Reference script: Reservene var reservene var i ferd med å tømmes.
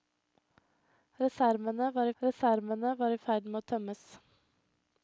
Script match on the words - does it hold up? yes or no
yes